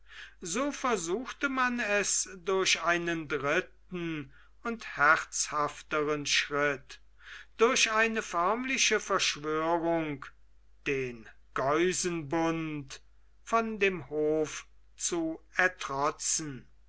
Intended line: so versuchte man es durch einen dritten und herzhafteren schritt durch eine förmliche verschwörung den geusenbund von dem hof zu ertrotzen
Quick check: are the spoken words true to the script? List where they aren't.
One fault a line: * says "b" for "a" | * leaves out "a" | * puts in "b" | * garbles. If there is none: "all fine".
all fine